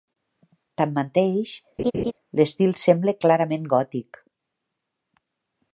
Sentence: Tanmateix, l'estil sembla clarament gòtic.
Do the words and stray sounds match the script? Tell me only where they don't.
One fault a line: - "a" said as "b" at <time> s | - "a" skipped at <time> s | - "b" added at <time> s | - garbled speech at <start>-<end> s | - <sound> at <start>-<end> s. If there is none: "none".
- laugh at 1.8-2.1 s